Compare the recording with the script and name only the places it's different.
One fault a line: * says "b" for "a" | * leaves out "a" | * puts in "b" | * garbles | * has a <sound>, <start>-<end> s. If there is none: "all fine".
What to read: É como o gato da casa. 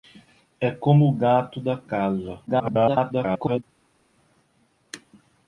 * garbles